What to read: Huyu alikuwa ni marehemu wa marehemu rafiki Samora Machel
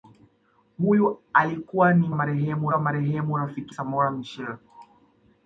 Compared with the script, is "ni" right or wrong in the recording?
right